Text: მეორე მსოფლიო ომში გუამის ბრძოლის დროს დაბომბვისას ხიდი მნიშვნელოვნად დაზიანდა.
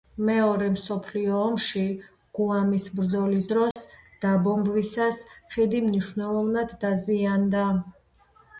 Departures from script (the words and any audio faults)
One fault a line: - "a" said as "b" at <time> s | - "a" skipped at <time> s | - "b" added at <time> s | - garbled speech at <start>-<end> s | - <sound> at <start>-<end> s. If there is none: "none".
- dropout at 3.7-3.8 s